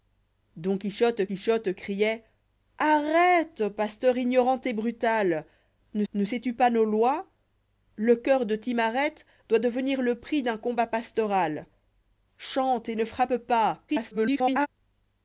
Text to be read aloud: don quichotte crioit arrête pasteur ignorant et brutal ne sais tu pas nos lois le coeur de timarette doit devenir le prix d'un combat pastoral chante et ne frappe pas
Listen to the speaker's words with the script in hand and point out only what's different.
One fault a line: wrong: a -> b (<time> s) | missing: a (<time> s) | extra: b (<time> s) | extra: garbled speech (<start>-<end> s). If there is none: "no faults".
extra: quichotte (1.2 s)
extra: ne (6.1 s)
extra: garbled speech (13.9-14.7 s)